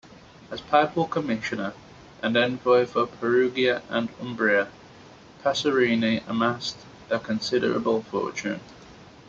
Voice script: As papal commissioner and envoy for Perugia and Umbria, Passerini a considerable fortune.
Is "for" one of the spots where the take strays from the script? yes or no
no